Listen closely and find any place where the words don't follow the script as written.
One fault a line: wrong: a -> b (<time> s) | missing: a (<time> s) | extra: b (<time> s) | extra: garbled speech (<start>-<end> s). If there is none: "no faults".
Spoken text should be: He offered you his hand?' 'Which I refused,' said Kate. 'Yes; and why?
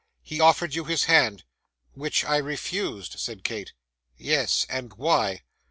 no faults